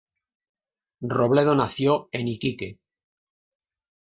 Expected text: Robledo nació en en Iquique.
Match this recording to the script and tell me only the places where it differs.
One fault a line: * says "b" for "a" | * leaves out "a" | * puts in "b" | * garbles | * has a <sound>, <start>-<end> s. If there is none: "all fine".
* leaves out "en"